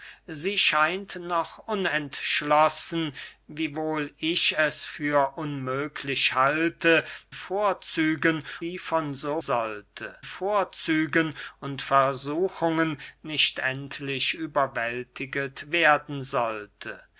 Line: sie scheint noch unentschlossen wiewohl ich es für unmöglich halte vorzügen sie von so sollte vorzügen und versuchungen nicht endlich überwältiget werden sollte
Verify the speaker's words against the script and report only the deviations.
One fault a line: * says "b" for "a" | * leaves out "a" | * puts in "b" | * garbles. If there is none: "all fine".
all fine